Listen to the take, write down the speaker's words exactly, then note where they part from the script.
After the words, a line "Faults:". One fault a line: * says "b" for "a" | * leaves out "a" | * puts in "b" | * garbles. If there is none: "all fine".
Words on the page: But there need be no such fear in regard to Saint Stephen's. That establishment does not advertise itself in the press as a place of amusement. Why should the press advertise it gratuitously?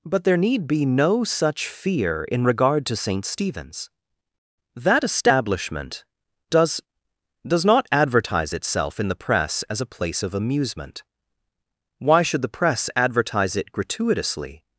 But there need be no such fear in regard to Saint Stephen's. That establishment does does not advertise itself in the press as a place of amusement. Why should the press advertise it gratuitously?
Faults:
* puts in "does"